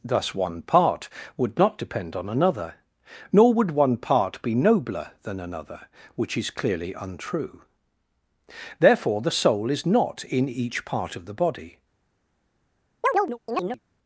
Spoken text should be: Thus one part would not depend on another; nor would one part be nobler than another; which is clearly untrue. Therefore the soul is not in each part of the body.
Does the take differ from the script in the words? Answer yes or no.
no